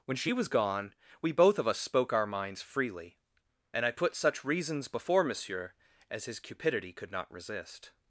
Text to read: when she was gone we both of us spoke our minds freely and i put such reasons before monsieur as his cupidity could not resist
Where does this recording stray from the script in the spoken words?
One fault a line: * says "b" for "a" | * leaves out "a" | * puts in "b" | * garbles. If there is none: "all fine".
all fine